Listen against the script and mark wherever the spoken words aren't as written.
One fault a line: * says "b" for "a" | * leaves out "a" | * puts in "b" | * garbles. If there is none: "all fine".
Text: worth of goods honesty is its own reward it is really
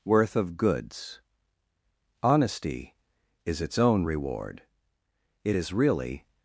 all fine